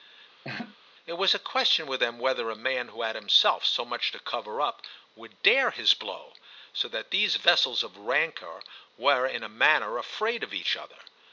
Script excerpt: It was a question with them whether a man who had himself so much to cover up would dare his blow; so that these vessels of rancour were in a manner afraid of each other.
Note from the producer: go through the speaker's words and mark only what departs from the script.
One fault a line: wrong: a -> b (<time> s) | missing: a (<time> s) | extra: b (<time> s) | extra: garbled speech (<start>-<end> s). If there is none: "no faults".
no faults